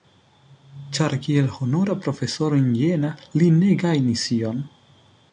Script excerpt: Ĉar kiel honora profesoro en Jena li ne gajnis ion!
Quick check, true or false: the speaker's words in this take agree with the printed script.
true